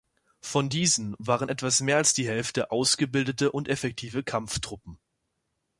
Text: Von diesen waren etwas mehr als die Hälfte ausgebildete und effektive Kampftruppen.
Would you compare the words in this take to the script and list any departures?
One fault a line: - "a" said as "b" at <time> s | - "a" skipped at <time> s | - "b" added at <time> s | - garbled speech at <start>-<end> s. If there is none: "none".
none